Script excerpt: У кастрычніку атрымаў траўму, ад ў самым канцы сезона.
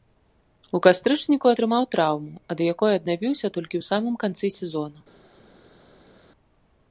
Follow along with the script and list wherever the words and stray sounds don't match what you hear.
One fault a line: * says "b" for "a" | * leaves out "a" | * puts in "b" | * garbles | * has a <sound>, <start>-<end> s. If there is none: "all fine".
* puts in "якой аднавіўся толькі"